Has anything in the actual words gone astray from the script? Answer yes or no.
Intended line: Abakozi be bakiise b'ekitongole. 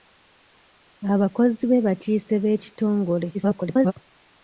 yes